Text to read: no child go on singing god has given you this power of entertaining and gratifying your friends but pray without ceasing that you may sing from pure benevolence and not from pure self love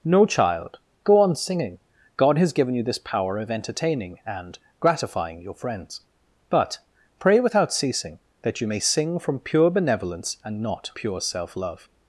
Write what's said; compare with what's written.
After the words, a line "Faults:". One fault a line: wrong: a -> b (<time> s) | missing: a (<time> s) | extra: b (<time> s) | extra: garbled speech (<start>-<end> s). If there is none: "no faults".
no child go on singing god has given you this power of entertaining and gratifying your friends but pray without ceasing that you may sing from pure benevolence and not pure self love
Faults:
missing: from (10.9 s)